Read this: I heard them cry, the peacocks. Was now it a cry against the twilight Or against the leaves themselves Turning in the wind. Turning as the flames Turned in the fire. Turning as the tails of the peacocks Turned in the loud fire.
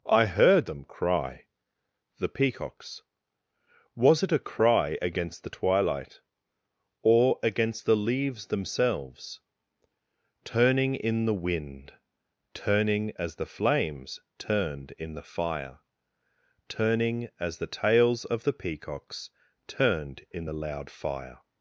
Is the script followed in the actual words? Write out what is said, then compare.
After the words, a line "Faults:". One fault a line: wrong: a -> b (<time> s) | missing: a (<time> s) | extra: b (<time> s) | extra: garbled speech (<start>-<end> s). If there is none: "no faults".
I heard them cry, the peacocks. Was it a cry against the twilight Or against the leaves themselves Turning in the wind. Turning as the flames Turned in the fire. Turning as the tails of the peacocks Turned in the loud fire.
Faults:
missing: now (4.2 s)